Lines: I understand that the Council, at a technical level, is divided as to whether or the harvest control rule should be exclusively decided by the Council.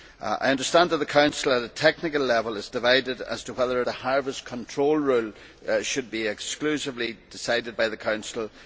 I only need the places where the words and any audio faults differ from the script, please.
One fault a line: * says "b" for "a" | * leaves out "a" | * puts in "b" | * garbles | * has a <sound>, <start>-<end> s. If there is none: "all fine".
all fine